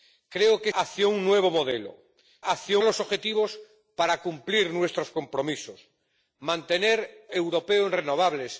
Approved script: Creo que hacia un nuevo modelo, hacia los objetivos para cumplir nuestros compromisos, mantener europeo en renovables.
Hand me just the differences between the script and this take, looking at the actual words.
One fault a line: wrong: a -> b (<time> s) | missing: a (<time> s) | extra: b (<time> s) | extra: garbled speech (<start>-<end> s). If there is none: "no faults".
no faults